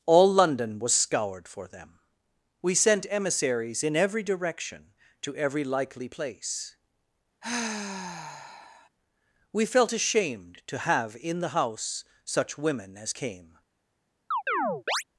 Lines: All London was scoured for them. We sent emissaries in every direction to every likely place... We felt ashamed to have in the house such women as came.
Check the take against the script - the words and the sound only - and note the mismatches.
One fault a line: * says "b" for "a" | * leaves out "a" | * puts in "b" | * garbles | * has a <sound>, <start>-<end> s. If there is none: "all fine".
* has a sigh, 7.4-8.9 s
* has a chirp, 14.3-15.0 s